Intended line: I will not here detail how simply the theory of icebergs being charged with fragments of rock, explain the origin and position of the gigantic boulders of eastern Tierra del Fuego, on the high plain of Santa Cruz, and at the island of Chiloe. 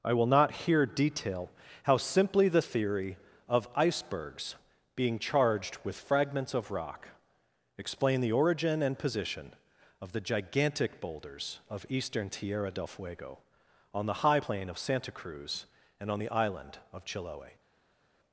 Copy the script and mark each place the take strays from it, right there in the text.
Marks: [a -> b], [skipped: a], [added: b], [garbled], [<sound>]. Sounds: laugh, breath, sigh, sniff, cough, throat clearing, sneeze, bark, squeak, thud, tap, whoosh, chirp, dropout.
I will not here detail how simply the theory of icebergs being charged with fragments of rock, explain the origin and position of the gigantic boulders of eastern Tierra del Fuego, on the high plain of Santa Cruz, and [at -> on] the island of Chiloe.